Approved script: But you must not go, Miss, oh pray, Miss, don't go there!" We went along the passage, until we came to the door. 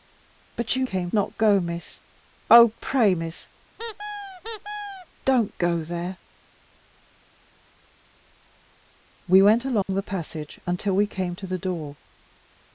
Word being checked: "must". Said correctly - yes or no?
no